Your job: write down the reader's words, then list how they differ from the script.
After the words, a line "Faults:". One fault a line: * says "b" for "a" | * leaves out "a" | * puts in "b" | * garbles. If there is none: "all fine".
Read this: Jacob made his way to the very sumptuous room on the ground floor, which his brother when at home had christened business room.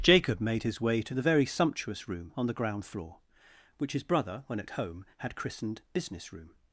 Jacob made his way to the very sumptuous room on the ground floor, which his brother when at home had christened business room.
Faults:
all fine